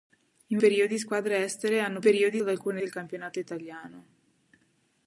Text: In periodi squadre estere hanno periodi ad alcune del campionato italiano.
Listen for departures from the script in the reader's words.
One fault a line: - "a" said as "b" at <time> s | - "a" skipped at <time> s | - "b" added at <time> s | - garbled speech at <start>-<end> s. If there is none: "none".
none